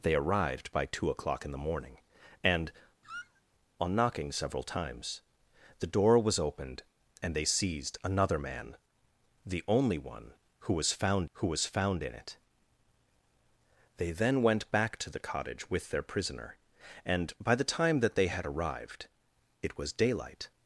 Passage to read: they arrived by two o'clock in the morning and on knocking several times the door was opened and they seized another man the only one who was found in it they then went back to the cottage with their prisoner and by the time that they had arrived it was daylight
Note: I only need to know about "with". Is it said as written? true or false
true